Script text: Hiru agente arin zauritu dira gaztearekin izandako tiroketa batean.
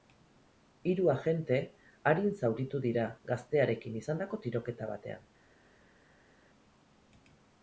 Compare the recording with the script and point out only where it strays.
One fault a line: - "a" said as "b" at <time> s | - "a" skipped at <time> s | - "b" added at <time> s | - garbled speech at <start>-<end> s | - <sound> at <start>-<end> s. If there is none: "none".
none